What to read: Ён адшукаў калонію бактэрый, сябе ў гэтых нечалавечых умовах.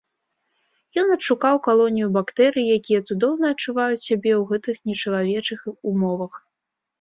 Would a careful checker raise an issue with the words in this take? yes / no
yes